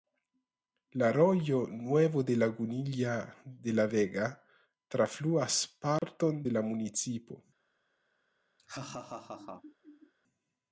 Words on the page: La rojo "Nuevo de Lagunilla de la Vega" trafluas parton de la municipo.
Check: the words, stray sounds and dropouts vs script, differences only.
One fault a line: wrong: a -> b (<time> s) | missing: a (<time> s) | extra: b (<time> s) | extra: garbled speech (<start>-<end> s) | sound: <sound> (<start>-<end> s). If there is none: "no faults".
sound: dropout (6.0-6.0 s)
sound: laugh (8.6-10.1 s)